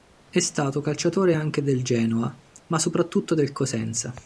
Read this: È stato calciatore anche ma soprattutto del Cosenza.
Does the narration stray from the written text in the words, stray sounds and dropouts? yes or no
yes